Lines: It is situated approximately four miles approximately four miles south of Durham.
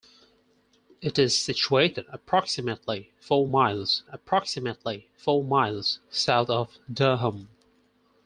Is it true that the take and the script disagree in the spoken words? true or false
false